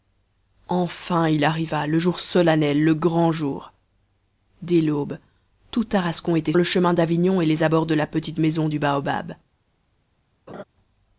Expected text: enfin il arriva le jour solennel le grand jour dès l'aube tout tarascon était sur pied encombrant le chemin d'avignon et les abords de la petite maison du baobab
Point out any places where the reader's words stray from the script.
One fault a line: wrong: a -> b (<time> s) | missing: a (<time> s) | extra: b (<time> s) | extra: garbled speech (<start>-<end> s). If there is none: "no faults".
missing: sur pied encombrant (6.5 s)